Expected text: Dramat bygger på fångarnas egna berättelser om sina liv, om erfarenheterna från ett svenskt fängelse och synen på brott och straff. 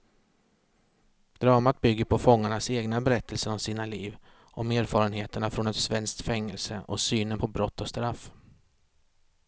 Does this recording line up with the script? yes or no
yes